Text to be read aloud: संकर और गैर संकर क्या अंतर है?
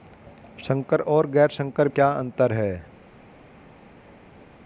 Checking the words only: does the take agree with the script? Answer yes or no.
yes